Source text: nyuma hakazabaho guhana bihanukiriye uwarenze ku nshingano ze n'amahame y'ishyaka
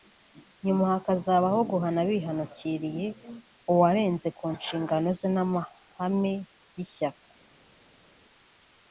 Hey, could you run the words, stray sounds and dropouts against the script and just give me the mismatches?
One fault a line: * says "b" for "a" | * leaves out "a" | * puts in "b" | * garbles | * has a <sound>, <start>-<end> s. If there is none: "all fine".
all fine